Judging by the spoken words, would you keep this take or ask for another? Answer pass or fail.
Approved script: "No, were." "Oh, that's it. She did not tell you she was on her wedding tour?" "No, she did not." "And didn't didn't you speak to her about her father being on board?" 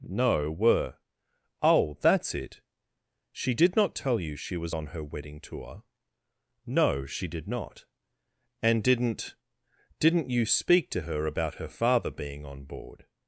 pass